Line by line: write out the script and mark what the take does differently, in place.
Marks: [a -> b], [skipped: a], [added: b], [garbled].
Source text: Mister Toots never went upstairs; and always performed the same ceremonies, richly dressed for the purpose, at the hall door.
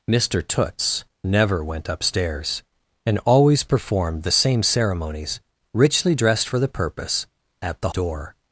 Mister Toots never went upstairs; and always performed the same ceremonies, richly dressed for the purpose, at the [skipped: hall] door.